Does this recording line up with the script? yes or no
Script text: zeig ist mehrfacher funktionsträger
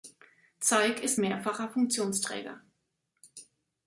yes